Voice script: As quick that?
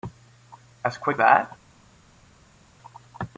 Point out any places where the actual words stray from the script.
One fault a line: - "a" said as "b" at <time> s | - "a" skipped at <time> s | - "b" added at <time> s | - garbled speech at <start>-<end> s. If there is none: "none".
none